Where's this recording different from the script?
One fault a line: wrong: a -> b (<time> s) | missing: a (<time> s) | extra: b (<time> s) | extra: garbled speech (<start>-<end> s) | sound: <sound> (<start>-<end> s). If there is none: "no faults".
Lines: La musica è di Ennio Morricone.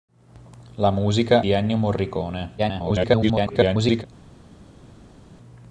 missing: è (1.4 s)
extra: garbled speech (2.6-4.0 s)